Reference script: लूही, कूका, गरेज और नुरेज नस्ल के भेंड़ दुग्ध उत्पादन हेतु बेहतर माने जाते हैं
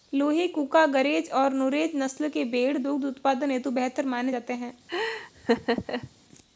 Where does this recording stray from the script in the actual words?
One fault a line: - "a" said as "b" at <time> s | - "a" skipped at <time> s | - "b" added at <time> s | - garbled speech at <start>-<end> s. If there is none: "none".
none